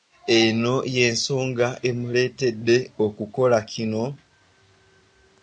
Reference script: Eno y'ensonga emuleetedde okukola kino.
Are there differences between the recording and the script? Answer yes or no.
no